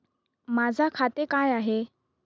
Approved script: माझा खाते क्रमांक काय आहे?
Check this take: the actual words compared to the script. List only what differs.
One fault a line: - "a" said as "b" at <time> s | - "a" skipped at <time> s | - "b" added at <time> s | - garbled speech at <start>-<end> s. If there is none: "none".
- "क्रमांक" skipped at 1.2 s